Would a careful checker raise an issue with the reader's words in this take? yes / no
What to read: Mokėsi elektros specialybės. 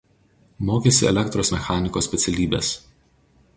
yes